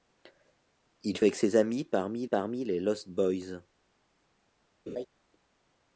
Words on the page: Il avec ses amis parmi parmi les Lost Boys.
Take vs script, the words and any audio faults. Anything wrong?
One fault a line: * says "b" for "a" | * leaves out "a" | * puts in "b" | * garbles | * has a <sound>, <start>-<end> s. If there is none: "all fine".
* has a laugh, 4.9-5.1 s